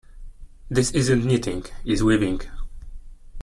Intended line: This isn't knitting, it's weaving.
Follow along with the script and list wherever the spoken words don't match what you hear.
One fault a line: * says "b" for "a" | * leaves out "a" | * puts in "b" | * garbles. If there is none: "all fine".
all fine